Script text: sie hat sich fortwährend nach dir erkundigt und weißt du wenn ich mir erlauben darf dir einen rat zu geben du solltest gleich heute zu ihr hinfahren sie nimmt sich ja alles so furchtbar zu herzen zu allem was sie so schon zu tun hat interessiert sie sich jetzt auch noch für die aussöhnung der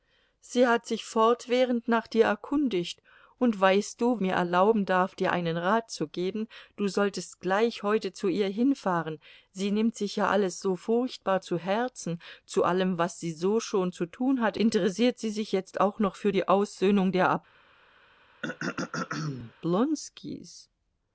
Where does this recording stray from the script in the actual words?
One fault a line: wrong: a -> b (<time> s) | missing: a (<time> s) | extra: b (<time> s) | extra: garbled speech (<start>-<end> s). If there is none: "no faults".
missing: wenn ich (4.2 s)